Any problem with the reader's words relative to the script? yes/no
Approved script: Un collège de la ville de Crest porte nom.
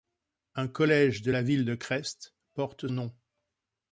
no